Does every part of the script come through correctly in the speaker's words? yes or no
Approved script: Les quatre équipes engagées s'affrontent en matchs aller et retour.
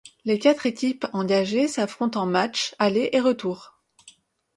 yes